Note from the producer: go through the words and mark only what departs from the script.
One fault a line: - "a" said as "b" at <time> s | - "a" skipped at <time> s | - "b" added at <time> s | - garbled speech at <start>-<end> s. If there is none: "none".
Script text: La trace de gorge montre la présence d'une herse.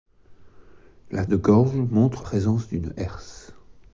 - "trace" skipped at 1.3 s
- "la" skipped at 2.3 s